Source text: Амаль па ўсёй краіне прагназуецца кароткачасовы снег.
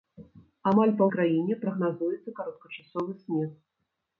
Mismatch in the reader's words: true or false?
true